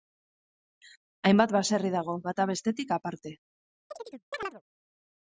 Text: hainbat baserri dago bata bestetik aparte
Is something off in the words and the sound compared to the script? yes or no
yes